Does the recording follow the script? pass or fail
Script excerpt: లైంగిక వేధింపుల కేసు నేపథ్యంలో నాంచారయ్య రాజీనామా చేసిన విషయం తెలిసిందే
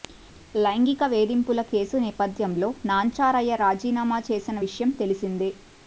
pass